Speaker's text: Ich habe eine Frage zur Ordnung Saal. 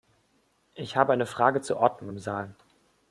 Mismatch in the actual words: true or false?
true